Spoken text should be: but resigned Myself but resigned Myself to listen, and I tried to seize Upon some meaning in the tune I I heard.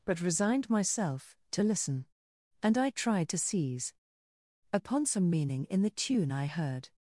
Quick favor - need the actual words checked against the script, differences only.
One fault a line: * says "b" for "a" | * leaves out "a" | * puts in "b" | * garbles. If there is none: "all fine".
* leaves out "but resigned Myself"
* leaves out "I"